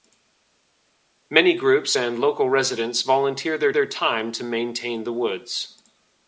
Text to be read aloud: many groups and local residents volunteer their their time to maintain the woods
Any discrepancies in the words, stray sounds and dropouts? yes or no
no